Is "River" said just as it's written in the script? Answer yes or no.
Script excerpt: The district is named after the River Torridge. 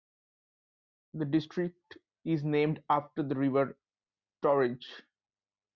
yes